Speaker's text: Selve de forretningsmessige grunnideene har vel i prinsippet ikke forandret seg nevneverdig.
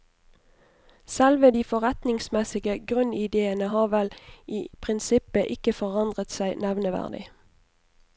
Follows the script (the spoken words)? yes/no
yes